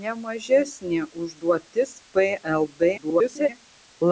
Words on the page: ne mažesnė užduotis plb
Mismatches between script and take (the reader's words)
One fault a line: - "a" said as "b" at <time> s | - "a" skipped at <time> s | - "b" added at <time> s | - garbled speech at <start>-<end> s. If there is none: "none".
- garbled speech at 3.0-3.5 s